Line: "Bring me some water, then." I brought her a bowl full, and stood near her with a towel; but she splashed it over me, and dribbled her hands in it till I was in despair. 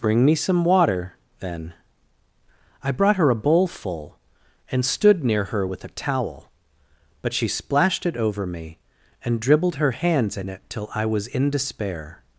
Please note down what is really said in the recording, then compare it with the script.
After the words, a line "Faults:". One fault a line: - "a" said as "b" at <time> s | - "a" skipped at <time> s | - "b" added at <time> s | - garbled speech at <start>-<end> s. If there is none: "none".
"Bring me some water, then." I brought her a bowl full, and stood near her with a towel; but she splashed it over me, and dribbled her hands in it till I was in despair.
Faults:
none